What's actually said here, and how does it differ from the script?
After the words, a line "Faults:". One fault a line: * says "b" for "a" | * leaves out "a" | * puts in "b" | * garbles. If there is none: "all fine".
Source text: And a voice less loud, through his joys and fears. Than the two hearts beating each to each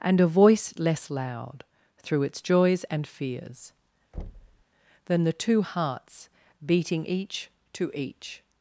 And a voice less loud, through its joys and fears. Than the two hearts beating each to each
Faults:
* says "its" for "his"